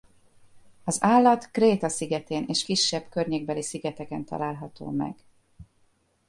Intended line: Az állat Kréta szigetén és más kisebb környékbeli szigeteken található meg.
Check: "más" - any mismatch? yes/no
yes